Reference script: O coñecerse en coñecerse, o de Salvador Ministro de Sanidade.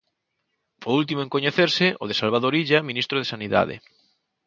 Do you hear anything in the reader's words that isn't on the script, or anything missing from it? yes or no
yes